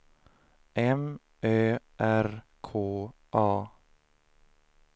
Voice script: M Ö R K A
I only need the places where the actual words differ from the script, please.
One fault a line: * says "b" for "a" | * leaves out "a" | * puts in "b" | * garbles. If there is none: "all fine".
all fine